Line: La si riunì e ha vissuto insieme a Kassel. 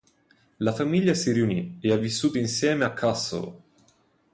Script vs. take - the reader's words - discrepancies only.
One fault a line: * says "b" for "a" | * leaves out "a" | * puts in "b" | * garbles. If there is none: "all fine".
* puts in "famiglia"